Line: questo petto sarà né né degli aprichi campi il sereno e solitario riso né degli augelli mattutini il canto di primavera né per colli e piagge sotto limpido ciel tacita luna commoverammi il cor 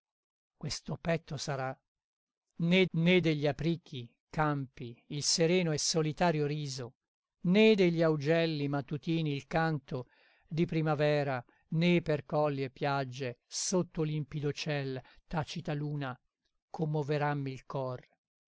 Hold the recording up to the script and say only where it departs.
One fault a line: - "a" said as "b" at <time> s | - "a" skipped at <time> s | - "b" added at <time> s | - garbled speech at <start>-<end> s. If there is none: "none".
none